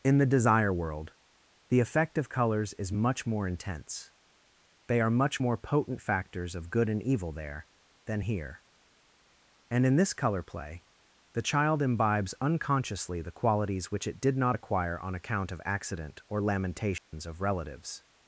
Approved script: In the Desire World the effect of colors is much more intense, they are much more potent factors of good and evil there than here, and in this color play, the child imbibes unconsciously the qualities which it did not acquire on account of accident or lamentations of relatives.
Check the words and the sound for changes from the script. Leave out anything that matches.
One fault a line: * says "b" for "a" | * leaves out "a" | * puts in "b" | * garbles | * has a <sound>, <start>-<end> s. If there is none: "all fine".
* has a dropout, 17.0-17.1 s